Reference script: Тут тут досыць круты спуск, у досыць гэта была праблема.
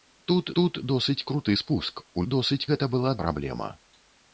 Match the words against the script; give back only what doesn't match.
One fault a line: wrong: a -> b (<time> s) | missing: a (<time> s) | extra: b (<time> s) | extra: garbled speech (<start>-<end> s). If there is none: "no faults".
no faults